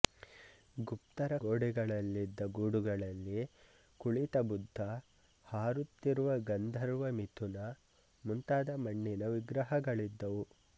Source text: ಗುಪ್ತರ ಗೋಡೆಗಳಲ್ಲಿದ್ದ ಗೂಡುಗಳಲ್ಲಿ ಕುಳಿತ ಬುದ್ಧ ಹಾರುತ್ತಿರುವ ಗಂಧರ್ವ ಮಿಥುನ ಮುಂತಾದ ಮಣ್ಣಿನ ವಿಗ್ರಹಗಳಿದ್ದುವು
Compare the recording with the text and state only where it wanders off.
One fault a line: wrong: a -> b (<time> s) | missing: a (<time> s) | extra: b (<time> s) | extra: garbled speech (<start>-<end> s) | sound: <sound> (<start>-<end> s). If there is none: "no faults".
no faults